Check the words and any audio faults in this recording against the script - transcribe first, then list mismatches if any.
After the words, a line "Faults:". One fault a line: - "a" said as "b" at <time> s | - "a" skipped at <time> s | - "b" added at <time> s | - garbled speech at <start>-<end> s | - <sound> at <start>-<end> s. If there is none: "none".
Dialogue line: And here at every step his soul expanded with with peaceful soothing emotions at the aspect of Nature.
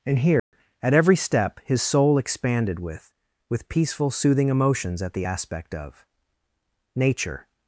And here at every step his soul expanded with with peaceful soothing emotions at the aspect of Nature.
Faults:
- dropout at 0.4-0.5 s